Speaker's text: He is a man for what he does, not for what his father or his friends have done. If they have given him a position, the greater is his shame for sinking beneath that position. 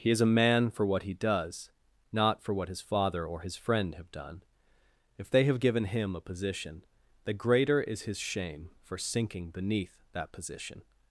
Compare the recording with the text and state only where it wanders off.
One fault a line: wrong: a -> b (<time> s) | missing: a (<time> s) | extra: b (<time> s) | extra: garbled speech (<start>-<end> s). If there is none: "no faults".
wrong: friends -> friend (3.5 s)